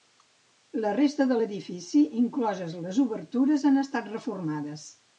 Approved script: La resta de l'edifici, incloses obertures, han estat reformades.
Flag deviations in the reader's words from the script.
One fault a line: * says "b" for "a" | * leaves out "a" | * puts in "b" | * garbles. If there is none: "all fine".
* puts in "les"